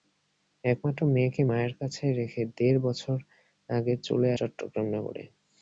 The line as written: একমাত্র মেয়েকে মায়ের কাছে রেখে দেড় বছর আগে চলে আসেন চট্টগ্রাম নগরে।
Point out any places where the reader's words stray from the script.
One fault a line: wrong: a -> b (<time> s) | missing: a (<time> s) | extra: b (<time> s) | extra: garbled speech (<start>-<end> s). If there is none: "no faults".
missing: আসেন (4.3 s)